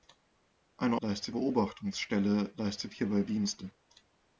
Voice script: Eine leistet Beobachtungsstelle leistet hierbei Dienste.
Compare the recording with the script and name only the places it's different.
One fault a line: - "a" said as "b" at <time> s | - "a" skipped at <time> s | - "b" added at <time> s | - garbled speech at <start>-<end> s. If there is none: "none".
none